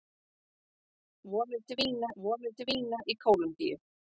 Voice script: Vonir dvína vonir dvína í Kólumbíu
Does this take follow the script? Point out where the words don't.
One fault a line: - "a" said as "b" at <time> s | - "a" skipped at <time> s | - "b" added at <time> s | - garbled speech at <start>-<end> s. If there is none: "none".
none